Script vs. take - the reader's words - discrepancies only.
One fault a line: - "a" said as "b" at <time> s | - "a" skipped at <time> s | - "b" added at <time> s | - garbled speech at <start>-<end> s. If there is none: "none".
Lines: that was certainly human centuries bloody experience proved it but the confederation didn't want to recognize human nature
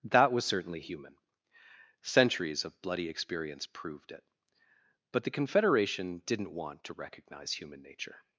- "of" added at 2.6 s